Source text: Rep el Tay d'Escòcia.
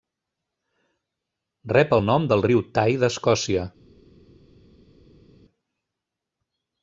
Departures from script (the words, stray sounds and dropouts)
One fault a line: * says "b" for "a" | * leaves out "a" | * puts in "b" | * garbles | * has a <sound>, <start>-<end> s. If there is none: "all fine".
* puts in "nom del riu"